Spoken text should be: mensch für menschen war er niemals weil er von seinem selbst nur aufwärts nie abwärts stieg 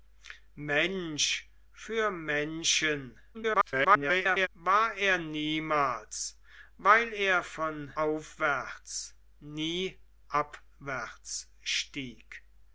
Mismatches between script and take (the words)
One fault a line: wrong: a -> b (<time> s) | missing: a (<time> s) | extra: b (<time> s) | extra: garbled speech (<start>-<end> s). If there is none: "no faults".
extra: garbled speech (3.3-4.5 s)
missing: seinem selbst nur (7.9 s)